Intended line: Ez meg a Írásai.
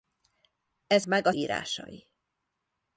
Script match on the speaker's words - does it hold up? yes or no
yes